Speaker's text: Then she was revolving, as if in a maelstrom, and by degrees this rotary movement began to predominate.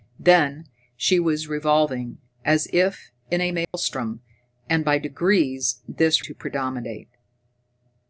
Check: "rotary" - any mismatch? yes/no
yes